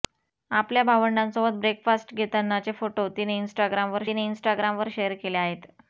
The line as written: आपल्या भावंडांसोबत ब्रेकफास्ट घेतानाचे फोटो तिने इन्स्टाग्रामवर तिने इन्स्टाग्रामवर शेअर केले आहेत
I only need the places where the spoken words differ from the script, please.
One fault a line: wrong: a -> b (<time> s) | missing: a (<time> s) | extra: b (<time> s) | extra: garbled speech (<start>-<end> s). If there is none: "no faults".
no faults